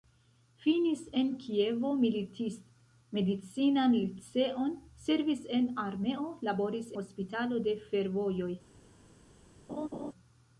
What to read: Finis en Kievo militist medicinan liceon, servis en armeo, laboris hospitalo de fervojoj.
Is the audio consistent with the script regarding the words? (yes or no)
yes